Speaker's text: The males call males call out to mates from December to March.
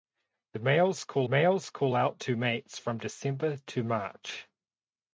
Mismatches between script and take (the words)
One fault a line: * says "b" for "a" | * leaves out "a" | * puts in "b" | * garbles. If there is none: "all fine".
all fine